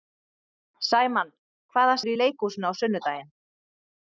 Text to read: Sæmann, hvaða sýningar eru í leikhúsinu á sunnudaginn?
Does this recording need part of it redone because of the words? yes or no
yes